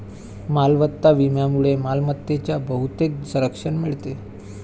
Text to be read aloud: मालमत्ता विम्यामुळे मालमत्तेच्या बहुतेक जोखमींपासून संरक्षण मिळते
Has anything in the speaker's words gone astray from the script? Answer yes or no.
yes